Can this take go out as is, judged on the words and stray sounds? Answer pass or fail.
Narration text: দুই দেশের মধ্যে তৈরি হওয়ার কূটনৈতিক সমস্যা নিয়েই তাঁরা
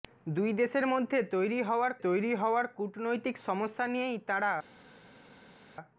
fail